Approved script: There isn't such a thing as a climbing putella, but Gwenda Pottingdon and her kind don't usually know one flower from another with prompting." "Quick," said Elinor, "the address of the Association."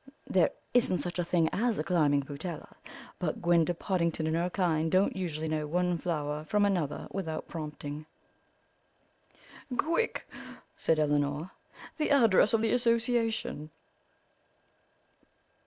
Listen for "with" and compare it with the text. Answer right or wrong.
wrong